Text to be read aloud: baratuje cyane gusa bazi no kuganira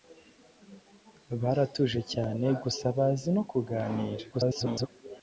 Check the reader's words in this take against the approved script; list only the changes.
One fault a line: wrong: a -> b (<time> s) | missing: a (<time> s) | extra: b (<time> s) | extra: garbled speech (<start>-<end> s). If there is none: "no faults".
extra: garbled speech (4.3-4.9 s)